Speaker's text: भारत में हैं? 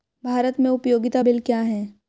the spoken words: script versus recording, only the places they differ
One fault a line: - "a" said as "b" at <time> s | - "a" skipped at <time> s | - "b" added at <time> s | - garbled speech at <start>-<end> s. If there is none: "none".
- "उपयोगिता बिल क्या" added at 0.7 s